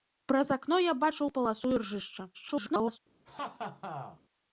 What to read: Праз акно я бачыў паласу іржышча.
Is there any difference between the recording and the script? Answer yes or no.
yes